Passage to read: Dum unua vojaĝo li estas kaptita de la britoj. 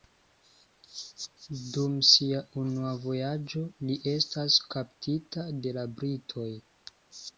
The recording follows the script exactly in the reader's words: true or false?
false